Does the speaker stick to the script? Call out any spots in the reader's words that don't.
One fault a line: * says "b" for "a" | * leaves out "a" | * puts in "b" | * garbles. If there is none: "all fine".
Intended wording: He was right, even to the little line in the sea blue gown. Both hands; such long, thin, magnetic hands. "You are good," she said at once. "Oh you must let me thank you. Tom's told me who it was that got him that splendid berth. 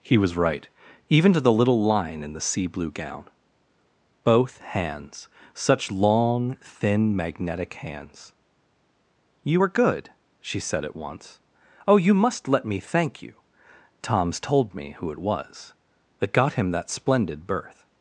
* says "were" for "are"